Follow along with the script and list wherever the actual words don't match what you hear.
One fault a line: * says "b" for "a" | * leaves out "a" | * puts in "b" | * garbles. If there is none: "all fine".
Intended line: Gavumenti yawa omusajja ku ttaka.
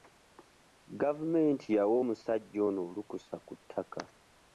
* puts in "ono olukusa"